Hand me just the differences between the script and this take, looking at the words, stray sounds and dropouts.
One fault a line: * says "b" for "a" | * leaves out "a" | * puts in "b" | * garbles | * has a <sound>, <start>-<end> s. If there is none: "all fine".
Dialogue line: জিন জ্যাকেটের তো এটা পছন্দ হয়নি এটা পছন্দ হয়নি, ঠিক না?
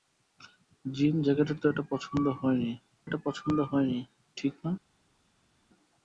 all fine